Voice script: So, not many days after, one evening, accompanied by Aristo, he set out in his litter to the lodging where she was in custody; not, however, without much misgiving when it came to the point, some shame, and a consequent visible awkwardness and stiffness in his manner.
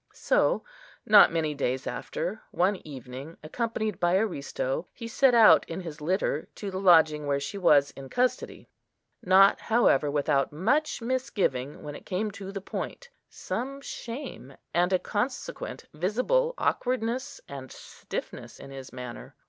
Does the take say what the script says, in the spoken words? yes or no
yes